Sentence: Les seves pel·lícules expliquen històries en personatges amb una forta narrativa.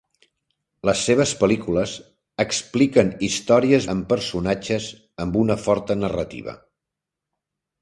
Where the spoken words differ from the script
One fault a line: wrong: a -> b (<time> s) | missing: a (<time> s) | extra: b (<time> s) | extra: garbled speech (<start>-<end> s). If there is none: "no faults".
no faults